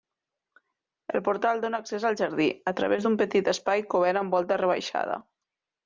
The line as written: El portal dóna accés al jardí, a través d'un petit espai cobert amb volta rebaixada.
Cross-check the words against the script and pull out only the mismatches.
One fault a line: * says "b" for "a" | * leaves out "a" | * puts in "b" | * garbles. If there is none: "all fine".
all fine